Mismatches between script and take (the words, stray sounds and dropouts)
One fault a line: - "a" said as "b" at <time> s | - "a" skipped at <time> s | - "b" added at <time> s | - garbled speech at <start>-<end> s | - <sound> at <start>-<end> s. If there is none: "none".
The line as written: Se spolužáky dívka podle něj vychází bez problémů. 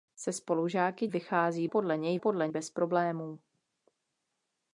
- "dívka" said as "vychází" at 1.1 s
- "vychází" said as "podle" at 2.2 s